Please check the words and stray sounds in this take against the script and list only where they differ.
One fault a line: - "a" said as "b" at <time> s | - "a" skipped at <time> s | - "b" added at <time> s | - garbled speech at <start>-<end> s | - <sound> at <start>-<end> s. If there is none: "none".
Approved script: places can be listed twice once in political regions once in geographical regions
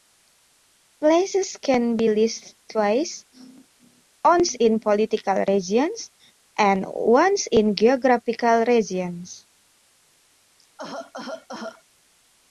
- "and" added at 6.6 s
- cough at 10.6-11.8 s